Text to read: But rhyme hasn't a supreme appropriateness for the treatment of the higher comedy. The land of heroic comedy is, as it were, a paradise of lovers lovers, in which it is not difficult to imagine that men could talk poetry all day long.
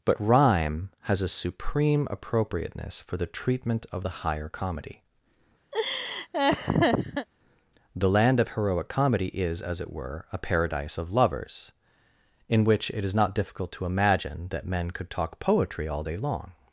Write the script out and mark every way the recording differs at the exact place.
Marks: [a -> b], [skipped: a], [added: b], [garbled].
But rhyme [hasn't -> has] a supreme appropriateness for the treatment of the higher comedy. The land of heroic comedy is, as it were, a paradise of lovers [skipped: lovers,] in which it is not difficult to imagine that men could talk poetry all day long.